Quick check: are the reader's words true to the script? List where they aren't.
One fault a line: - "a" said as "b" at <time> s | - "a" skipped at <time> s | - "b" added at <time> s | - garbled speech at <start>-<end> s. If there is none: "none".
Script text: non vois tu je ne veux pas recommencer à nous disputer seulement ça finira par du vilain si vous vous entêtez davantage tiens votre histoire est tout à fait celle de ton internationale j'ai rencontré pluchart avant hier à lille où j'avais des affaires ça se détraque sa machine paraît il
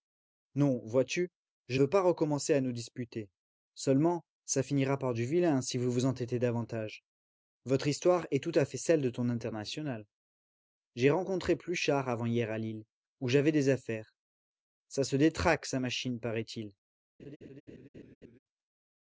- "ne" skipped at 1.8 s
- "tiens" skipped at 7.0 s